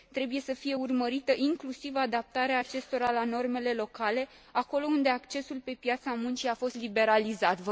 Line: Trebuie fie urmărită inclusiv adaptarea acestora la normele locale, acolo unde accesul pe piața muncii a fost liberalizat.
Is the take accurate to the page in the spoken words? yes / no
no